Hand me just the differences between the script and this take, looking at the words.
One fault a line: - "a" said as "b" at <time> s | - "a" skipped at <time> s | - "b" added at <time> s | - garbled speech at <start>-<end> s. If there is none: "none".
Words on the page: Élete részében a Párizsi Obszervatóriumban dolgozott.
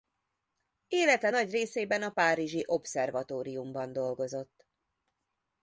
- "nagy" added at 1.3 s